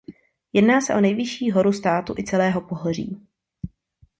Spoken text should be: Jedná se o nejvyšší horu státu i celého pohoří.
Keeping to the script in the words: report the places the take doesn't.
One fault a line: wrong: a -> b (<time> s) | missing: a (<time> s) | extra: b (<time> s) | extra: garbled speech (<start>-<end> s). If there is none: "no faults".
no faults